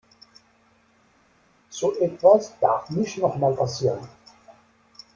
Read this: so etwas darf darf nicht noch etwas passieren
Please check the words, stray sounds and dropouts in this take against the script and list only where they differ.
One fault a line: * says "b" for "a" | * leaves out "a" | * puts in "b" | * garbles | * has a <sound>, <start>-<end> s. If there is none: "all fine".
* leaves out "darf"
* says "mal" for "etwas"